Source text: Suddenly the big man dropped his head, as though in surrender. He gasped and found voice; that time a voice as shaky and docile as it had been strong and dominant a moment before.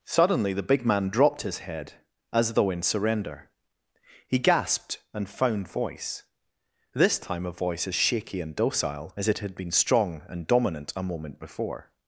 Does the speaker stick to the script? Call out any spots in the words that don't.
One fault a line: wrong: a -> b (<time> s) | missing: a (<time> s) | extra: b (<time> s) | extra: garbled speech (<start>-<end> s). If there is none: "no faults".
wrong: that -> this (7.0 s)